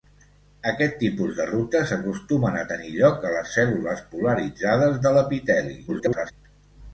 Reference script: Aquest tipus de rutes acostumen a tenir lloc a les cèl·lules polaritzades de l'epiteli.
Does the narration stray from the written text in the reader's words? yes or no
yes